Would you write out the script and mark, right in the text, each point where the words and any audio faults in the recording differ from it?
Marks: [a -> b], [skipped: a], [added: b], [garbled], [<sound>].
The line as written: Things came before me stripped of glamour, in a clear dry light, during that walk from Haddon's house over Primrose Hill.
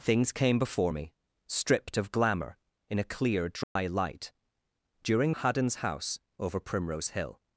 Things came before me stripped of glamour, in a clear dry [dropout] light, during [skipped: that walk from] Haddon's house over Primrose Hill.